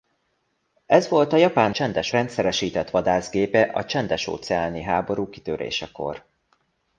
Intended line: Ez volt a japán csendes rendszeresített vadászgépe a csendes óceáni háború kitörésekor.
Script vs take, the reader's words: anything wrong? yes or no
no